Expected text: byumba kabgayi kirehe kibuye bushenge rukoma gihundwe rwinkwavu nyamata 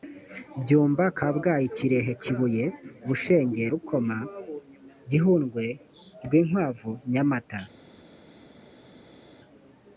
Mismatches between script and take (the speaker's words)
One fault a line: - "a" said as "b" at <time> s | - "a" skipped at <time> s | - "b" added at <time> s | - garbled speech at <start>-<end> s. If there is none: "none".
none